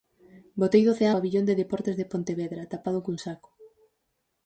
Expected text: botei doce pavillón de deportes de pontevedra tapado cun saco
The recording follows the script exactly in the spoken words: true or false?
true